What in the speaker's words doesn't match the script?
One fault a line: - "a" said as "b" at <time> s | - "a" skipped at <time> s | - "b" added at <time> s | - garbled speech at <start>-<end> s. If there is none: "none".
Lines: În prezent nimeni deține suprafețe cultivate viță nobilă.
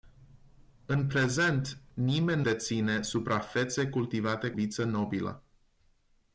none